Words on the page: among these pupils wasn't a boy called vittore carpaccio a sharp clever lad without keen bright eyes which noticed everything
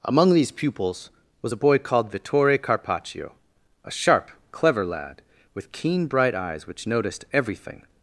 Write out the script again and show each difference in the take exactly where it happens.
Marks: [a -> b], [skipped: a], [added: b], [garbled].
among these pupils [wasn't -> was] a boy called vittore carpaccio a sharp clever lad [without -> with] keen bright eyes which noticed everything